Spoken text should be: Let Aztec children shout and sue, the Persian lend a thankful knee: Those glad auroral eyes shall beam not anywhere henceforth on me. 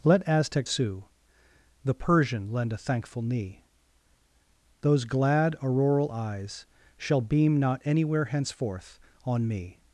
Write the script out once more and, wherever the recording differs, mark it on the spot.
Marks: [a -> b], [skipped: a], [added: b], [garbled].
Let Aztec [skipped: children shout and] sue, the Persian lend a thankful knee: Those glad auroral eyes shall beam not anywhere henceforth on me.